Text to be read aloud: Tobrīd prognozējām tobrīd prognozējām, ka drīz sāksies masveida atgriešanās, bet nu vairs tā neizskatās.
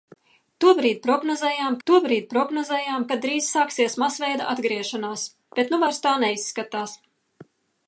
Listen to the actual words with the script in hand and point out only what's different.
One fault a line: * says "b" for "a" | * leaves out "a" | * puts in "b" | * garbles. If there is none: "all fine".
all fine